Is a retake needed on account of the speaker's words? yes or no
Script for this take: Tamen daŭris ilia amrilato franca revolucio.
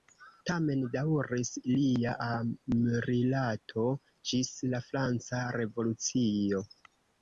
yes